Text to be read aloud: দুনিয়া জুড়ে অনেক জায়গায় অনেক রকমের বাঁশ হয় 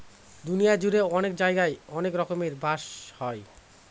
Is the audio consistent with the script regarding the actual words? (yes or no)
yes